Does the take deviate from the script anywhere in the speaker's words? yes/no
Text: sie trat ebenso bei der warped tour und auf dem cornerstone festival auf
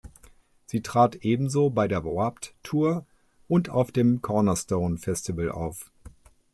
no